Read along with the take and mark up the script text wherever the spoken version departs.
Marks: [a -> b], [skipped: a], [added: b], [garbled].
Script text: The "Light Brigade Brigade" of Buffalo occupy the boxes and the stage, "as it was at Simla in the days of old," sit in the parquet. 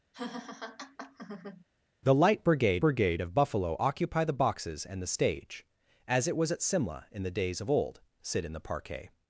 The "Light Brigade Brigade" of Buffalo occupy the boxes and the stage, "as it was at Simla in the days of old," sit in the parquet.